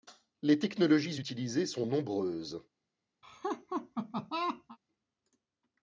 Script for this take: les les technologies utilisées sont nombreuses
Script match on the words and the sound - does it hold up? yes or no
no